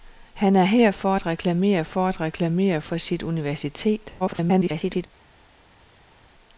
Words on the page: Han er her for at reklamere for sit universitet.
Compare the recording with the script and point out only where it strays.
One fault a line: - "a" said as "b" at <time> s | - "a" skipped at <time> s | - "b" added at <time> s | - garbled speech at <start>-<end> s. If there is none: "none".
- "at reklamere for" added at 2.1 s
- garbled speech at 4.2-5.1 s